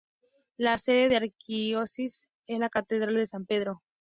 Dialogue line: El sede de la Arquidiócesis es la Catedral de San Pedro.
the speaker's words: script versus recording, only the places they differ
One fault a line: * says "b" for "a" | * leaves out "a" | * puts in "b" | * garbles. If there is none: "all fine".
* says "La" for "El"